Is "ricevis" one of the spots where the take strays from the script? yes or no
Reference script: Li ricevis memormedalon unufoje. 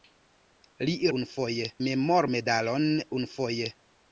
yes